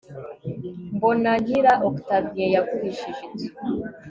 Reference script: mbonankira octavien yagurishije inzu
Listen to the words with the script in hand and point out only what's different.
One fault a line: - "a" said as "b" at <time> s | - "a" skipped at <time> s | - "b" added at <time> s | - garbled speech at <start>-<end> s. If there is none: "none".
none